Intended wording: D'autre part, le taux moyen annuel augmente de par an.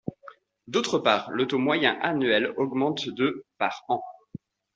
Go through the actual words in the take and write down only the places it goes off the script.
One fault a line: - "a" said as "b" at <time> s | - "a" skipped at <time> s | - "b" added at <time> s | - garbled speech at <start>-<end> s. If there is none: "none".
none